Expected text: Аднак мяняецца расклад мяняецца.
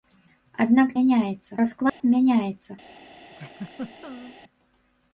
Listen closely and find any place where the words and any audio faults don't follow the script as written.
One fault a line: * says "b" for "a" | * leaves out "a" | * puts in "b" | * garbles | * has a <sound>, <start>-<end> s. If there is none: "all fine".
* has a dropout, 1.9-2.0 s
* has a laugh, 3.3-4.4 s